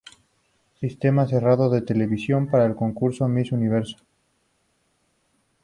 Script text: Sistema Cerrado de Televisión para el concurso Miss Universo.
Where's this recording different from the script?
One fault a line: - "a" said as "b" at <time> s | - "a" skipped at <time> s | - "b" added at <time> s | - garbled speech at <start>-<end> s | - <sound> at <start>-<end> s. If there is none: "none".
none